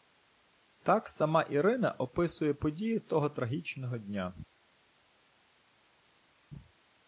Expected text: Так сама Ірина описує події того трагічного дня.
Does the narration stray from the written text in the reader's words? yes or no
no